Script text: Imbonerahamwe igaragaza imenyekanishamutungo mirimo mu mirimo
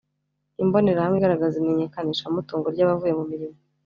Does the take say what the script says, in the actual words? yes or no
no